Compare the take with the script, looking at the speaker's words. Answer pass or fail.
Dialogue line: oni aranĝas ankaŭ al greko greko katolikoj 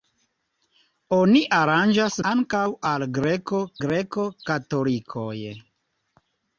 pass